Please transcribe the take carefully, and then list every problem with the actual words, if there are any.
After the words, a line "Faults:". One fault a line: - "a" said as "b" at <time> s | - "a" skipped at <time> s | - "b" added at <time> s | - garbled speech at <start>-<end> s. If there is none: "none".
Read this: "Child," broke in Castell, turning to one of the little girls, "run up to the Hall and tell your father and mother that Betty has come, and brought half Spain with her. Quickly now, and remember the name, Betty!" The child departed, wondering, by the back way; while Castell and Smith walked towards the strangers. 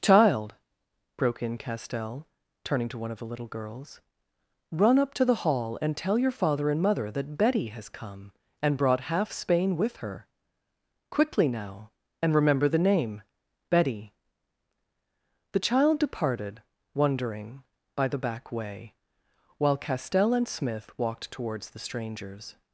"Child," broke in Castell, turning to one of the little girls, "run up to the Hall and tell your father and mother that Betty has come, and brought half Spain with her. Quickly now, and remember the name, Betty!" The child departed, wondering, by the back way; while Castell and Smith walked towards the strangers.
Faults:
none